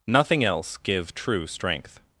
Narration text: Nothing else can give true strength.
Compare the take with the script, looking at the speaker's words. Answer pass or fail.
fail